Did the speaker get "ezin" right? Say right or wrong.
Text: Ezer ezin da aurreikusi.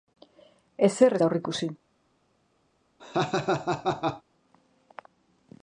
wrong